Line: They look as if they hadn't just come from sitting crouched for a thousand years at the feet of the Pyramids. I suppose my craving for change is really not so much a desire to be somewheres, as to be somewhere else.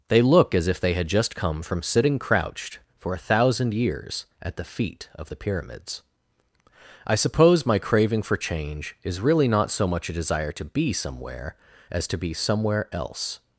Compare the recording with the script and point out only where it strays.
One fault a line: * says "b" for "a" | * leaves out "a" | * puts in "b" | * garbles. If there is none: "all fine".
* says "had" for "hadn't"
* says "somewhere" for "somewheres"